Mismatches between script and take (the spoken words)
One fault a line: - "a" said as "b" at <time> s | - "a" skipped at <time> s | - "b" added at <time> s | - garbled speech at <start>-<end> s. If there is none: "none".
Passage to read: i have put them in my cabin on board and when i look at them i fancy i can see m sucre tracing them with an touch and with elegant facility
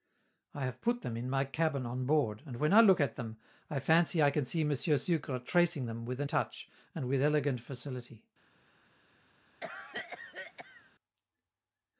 none